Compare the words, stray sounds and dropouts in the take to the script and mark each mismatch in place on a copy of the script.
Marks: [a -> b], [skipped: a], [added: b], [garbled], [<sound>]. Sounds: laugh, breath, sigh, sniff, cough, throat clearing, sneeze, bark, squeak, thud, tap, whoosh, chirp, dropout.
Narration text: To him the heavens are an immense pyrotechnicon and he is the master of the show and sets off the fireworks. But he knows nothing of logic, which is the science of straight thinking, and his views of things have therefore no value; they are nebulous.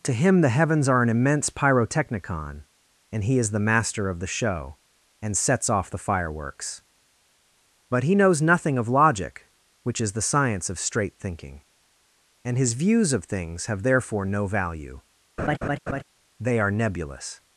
To him the heavens are an immense pyrotechnicon and he is the master of the show and sets off the fireworks. But he knows nothing of logic, which is the science of straight thinking, and his views of things have therefore no value; [laugh] they are nebulous.